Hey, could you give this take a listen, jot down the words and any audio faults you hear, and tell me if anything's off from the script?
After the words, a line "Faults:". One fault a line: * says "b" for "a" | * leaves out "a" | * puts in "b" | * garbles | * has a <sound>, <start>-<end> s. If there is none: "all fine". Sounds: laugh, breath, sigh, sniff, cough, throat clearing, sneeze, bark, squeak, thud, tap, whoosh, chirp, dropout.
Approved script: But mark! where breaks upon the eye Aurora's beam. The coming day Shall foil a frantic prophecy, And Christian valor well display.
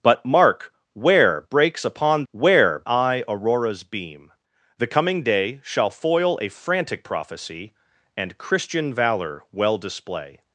But mark! where breaks upon where eye Aurora's beam. The coming day Shall foil a frantic prophecy, And Christian valor well display.
Faults:
* says "where" for "the"